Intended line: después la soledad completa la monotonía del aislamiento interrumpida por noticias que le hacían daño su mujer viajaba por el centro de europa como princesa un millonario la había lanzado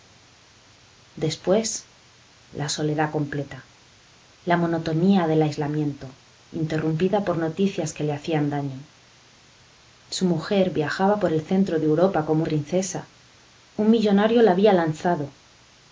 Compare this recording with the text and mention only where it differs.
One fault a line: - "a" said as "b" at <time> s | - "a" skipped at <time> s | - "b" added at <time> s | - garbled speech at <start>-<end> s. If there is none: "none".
none